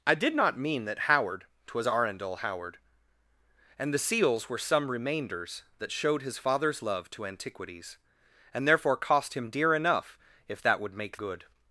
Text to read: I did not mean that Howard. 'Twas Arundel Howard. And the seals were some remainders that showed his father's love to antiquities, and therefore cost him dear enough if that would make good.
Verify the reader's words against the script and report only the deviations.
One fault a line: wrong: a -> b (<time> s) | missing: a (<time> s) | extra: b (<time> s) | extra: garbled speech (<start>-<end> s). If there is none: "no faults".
no faults